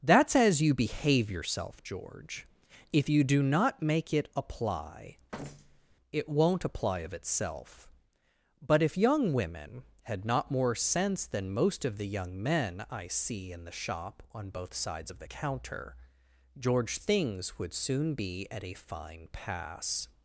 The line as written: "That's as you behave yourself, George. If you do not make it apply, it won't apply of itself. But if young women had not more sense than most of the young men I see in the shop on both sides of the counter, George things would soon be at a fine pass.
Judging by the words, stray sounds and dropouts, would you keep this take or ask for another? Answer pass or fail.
fail